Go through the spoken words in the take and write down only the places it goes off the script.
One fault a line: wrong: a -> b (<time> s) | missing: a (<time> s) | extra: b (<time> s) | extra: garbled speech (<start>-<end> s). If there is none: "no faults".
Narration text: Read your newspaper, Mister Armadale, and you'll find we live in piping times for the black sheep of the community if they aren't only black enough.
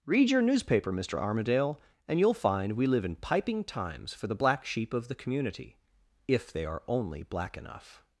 wrong: aren't -> are (6.7 s)